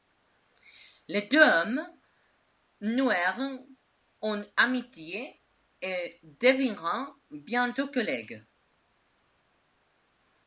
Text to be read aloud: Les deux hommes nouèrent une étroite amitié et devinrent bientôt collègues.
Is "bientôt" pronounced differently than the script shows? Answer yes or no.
no